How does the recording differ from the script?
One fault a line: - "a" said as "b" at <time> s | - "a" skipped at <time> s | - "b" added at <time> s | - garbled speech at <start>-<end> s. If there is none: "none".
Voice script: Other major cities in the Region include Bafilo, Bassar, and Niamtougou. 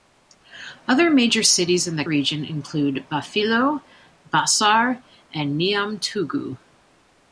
none